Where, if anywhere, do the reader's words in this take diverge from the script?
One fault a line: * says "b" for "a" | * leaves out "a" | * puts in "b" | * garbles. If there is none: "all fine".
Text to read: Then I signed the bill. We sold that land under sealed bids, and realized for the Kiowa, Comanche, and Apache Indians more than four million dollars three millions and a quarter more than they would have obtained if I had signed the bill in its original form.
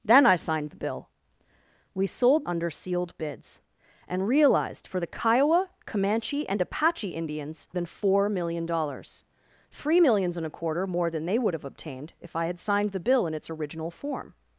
* leaves out "that land"
* leaves out "more"